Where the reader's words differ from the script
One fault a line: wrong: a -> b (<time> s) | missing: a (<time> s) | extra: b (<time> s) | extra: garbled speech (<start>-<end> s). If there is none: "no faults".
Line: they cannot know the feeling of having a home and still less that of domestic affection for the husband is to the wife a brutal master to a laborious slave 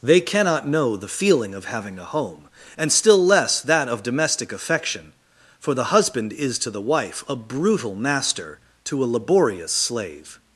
no faults